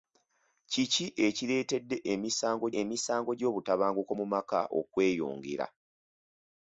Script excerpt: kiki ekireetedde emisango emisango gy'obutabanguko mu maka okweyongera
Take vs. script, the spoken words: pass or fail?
pass